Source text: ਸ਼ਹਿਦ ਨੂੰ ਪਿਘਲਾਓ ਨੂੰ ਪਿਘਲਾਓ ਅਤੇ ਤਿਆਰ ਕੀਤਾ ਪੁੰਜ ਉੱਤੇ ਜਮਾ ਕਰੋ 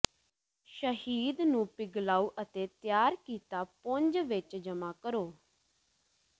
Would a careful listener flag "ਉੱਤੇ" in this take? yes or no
yes